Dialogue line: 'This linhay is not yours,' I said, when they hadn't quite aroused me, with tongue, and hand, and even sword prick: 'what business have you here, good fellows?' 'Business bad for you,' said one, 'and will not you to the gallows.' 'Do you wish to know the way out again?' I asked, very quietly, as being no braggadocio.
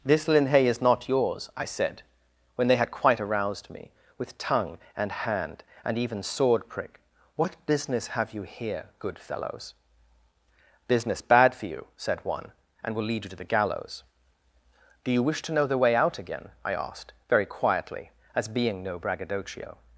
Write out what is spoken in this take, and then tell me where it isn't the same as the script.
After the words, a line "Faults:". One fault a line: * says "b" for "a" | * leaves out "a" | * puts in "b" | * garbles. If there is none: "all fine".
'This linhay is not yours,' I said, when they had quite aroused me, with tongue, and hand, and even sword prick: 'what business have you here, good fellows?' 'Business bad for you,' said one, 'and will lead you to the gallows.' 'Do you wish to know the way out again?' I asked, very quietly, as being no braggadocio.
Faults:
* says "had" for "hadn't"
* says "lead" for "not"